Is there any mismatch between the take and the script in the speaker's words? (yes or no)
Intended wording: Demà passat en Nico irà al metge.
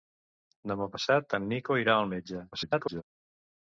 yes